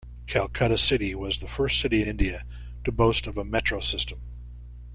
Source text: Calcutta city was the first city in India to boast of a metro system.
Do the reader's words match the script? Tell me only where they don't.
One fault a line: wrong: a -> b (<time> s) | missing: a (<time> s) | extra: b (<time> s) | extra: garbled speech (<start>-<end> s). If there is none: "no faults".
missing: in (2.0 s)